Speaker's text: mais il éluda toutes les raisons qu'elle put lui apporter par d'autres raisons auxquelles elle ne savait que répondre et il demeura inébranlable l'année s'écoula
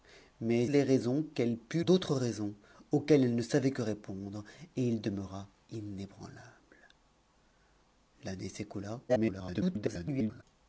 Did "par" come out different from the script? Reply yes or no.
yes